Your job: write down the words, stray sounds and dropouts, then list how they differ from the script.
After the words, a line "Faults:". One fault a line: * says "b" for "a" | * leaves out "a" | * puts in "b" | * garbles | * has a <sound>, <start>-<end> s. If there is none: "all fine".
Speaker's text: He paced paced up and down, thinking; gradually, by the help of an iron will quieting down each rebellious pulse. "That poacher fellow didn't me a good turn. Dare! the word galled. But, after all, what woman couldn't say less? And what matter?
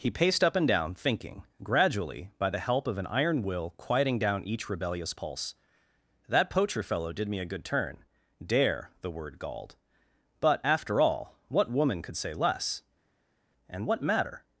He paced up and down, thinking; gradually, by the help of an iron will quieting down each rebellious pulse. "That poacher fellow did me a good turn. Dare! the word galled. But, after all, what woman could say less? And what matter?
Faults:
* leaves out "paced"
* says "did" for "didn't"
* says "could" for "couldn't"